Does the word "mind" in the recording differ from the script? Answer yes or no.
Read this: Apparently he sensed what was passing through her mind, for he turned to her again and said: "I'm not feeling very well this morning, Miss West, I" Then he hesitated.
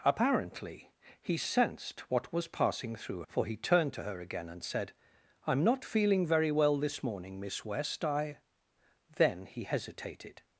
yes